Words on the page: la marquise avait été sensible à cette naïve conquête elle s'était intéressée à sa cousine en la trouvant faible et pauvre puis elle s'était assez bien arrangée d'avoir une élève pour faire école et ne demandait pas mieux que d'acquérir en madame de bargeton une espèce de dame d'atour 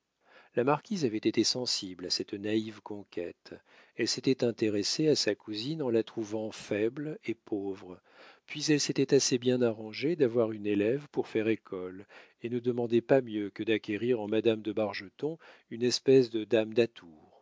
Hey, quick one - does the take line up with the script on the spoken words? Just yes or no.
yes